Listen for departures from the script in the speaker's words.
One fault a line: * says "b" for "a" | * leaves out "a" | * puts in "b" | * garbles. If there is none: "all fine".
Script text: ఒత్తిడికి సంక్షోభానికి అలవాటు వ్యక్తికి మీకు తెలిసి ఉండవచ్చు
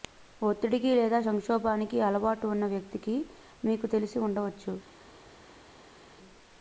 * puts in "లేదా"
* puts in "ఉన్న"